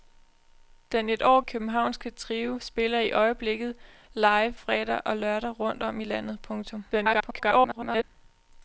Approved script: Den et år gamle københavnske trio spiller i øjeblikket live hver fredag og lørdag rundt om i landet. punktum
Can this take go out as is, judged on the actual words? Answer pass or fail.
fail